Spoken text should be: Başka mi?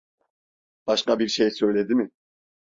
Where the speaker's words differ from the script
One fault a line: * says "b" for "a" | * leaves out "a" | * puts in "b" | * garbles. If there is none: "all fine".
* puts in "bir şey söyledi"